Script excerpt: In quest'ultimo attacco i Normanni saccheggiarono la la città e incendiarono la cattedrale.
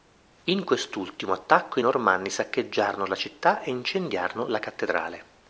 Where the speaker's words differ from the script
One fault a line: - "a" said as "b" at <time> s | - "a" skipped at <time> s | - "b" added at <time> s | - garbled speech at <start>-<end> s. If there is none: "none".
- "la" skipped at 3.2 s